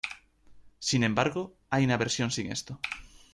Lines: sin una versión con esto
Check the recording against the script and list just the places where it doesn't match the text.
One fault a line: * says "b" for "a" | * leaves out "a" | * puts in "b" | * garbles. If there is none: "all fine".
* puts in "embargo hay"
* says "sin" for "con"